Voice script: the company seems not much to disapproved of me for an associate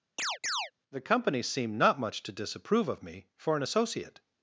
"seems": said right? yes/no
no